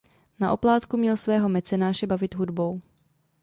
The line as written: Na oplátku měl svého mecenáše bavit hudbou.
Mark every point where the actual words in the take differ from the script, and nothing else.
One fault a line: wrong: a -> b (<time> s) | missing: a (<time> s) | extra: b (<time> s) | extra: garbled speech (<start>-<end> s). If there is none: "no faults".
no faults